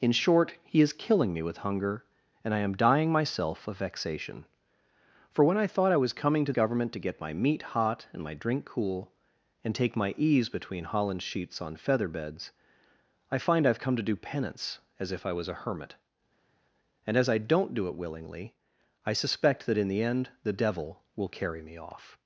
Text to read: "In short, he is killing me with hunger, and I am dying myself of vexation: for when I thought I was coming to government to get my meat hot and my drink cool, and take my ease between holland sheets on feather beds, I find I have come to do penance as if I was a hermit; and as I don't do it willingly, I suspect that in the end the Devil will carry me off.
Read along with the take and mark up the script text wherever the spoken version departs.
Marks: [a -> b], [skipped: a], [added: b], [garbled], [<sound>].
"In short, he is killing me with hunger, and I am dying myself of vexation: for when I thought I was coming to government to get my meat hot and my drink cool, and take my ease between holland sheets on feather beds, I find I have come to do penance as if I was a hermit; and as I don't do it willingly, I suspect that in the end the Devil will carry me off.